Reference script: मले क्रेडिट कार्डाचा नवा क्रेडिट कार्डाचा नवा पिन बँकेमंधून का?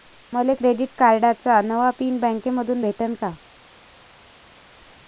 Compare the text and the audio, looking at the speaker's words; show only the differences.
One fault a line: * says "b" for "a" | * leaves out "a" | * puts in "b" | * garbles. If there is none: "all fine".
* leaves out "क्रेडिट कार्डाचा नवा"
* puts in "भेटन"